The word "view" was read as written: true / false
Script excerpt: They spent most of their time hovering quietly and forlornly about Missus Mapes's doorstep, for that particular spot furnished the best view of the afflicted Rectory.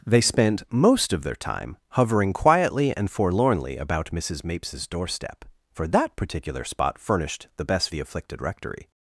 false